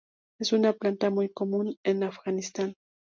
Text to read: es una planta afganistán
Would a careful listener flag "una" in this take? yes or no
no